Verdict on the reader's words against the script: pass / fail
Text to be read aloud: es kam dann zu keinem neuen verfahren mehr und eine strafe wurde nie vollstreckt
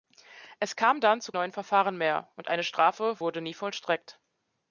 fail